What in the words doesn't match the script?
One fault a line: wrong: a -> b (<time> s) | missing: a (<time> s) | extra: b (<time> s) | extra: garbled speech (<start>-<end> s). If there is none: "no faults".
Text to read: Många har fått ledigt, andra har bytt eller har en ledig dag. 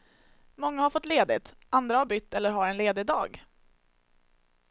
no faults